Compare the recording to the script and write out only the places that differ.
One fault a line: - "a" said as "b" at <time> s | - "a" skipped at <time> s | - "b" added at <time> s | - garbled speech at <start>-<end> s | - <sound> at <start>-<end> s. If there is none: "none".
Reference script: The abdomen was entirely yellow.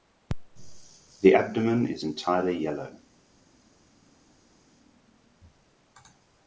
- "was" said as "is" at 1.9 s